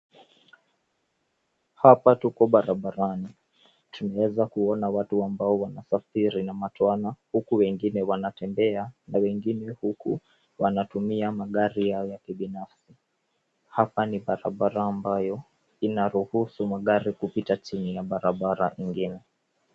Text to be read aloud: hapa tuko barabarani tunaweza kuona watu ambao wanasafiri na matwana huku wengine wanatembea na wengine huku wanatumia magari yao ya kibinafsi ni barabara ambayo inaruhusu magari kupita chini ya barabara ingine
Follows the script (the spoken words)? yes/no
no